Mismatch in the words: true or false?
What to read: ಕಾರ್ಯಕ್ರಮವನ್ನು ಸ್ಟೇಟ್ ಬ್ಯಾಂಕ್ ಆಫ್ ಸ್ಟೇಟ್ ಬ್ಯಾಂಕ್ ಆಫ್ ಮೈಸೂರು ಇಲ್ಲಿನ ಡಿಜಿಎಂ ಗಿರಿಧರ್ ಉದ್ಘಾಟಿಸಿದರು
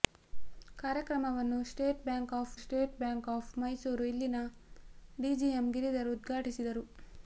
false